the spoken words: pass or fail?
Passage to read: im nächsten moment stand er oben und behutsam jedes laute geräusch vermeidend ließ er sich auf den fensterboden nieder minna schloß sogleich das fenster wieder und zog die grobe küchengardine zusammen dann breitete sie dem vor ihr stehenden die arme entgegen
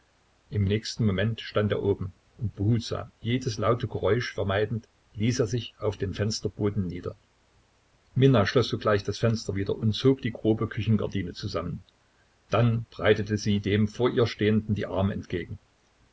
pass